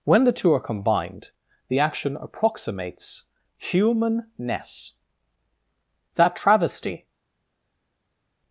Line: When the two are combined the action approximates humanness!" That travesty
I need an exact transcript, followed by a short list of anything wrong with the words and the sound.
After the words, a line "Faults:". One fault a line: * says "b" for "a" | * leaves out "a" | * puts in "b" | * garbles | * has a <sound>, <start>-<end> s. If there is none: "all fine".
When the two are combined the action approximates humanness!" That travesty
Faults:
all fine